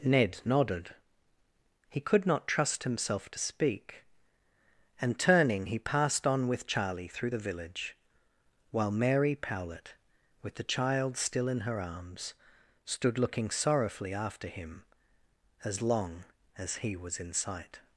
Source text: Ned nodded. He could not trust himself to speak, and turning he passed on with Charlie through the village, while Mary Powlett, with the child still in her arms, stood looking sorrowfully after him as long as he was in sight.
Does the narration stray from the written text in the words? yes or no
no